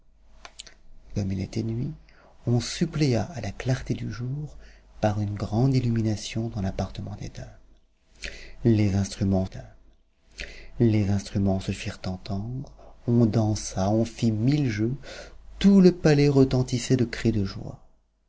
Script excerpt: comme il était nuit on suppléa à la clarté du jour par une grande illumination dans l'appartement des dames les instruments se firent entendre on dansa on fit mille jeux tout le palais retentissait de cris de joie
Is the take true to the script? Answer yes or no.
no